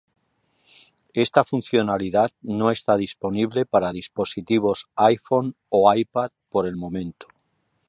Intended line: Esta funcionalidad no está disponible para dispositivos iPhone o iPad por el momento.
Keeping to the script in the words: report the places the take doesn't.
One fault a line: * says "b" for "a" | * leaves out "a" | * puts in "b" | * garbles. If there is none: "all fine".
all fine